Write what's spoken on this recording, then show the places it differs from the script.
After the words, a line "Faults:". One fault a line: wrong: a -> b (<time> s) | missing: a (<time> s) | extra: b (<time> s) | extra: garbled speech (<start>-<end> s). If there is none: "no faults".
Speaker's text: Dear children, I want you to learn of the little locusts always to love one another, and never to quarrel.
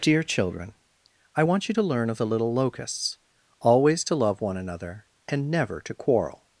Dear children, I want you to learn of the little locusts always to love one another, and never to quarrel.
Faults:
no faults